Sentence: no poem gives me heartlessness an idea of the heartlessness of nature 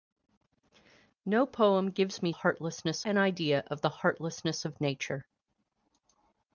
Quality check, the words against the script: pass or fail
pass